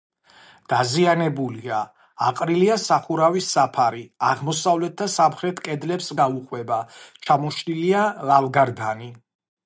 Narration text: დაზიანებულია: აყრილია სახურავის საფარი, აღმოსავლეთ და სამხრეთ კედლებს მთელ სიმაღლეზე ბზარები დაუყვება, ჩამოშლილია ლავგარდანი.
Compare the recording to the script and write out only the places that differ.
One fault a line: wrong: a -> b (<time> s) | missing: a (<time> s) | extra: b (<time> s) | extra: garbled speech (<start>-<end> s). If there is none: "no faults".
missing: მთელ სიმაღლეზე ბზარები (6.1 s)